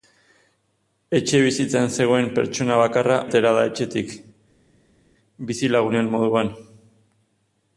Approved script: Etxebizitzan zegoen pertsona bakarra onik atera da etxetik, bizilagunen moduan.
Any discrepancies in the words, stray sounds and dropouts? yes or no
yes